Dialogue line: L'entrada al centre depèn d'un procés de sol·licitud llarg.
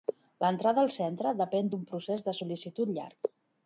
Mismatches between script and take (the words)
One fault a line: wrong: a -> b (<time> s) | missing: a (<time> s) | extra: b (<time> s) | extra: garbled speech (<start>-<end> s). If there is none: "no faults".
no faults